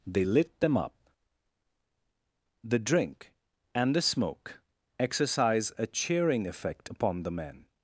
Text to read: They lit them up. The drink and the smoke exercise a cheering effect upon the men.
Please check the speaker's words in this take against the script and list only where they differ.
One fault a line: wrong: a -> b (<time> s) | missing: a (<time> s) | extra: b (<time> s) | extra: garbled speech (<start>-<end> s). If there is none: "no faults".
no faults